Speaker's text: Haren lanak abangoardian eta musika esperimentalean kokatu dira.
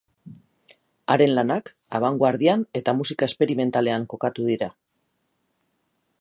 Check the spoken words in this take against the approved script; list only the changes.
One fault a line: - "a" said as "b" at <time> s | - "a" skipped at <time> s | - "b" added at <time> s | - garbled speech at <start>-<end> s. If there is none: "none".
none